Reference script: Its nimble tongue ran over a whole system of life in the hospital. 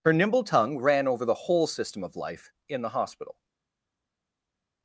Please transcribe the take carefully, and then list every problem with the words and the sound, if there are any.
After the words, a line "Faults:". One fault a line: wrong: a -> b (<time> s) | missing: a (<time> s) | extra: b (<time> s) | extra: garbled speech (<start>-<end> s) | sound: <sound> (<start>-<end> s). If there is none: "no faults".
Her nimble tongue ran over the whole system of life in the hospital.
Faults:
wrong: Its -> Her (0.0 s)
wrong: a -> the (1.2 s)